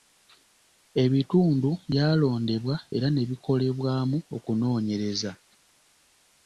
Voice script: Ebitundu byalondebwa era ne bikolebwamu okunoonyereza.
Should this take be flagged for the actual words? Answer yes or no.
no